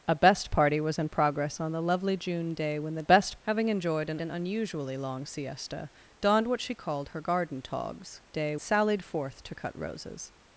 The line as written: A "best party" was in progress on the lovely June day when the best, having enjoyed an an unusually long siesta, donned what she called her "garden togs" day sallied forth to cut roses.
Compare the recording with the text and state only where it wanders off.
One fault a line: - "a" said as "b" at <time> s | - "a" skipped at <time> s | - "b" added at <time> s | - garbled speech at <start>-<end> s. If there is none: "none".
none